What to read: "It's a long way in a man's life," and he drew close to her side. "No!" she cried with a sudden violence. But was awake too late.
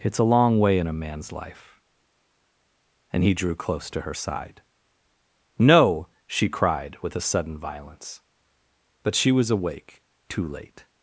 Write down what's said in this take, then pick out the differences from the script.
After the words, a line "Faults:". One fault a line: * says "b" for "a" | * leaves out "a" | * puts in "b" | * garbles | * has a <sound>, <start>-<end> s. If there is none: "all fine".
"It's a long way in a man's life," and he drew close to her side. "No!" she cried with a sudden violence. But she was awake too late.
Faults:
* puts in "she"